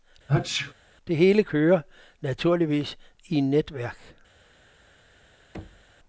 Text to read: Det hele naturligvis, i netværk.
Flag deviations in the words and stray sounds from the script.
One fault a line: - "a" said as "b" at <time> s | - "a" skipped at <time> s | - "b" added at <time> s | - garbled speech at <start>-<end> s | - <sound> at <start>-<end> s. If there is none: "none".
- sneeze at 0.3-0.7 s
- "kører" added at 1.4 s
- thud at 5.5-5.9 s